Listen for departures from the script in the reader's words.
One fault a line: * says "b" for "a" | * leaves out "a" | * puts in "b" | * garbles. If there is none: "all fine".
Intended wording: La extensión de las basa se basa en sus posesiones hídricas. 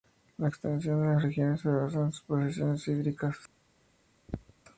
* says "regiones" for "basa"